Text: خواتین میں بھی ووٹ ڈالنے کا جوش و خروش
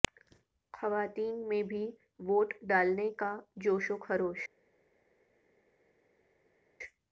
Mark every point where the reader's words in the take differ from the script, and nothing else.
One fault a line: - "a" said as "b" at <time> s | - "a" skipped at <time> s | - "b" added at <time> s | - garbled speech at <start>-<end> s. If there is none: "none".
none